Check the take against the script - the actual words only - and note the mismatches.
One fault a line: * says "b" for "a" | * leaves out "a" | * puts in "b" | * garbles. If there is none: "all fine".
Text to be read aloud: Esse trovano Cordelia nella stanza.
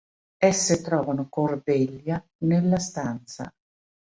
all fine